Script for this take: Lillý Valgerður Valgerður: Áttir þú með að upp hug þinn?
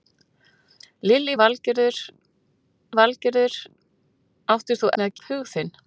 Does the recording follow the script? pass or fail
pass